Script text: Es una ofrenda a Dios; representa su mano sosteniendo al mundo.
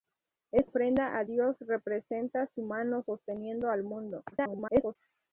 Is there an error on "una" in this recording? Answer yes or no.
yes